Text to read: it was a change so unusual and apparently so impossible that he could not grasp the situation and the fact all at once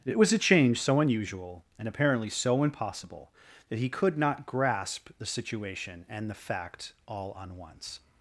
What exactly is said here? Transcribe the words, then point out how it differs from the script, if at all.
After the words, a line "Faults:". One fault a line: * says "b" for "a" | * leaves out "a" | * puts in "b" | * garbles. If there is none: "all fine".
it was a change so unusual and apparently so impossible that he could not grasp the situation and the fact all on once
Faults:
* says "on" for "at"